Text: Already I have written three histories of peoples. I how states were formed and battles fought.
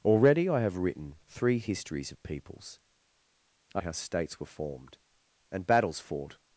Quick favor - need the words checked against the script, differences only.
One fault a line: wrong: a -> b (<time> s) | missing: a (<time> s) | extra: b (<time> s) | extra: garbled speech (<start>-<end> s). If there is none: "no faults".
no faults